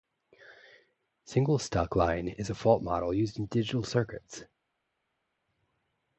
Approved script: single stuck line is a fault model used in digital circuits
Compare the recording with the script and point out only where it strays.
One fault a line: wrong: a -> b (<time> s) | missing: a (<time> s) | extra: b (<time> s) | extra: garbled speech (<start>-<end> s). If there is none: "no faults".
no faults